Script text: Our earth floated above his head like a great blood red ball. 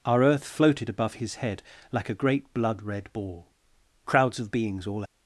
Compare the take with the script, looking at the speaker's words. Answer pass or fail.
fail